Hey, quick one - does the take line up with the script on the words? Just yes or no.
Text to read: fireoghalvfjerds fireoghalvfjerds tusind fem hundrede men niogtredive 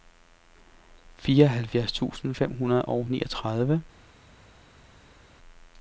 no